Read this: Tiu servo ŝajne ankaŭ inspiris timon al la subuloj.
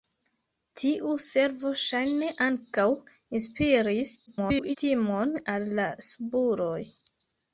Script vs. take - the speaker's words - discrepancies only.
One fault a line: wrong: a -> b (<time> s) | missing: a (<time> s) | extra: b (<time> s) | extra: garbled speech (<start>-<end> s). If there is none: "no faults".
extra: garbled speech (4.3-4.8 s)